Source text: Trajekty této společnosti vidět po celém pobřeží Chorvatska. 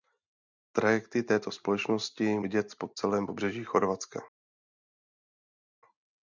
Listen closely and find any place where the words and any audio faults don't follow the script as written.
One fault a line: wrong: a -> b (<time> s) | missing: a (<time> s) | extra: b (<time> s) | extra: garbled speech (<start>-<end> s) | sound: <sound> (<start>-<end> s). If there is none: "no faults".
no faults